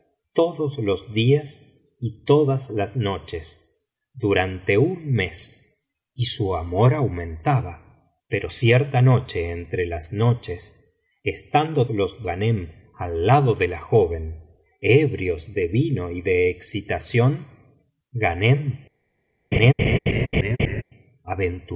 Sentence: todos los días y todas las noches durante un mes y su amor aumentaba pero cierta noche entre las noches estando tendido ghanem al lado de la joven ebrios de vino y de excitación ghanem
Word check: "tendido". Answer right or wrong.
wrong